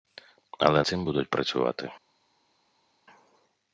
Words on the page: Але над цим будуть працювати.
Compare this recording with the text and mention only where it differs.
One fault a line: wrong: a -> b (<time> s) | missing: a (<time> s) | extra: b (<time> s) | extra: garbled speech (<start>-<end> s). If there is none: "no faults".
missing: над (0.8 s)